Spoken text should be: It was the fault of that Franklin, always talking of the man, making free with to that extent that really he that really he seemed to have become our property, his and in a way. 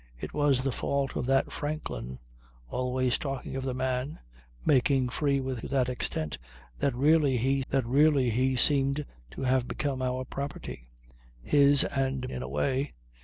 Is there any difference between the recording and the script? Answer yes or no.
no